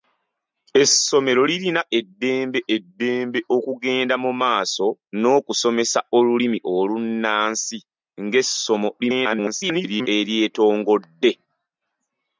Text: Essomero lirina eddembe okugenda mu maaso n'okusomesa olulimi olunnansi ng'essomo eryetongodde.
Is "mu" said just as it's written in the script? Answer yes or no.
yes